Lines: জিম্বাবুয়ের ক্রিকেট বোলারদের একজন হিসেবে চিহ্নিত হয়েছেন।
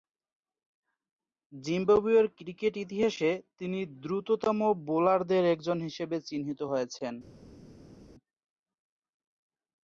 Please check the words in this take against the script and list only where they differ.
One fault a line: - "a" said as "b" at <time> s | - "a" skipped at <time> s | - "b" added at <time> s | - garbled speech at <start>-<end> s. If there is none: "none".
- "ইতিহাসে তিনি দ্রুততম" added at 2.8 s